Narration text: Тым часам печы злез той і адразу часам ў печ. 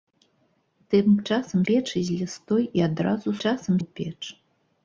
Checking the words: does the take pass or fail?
pass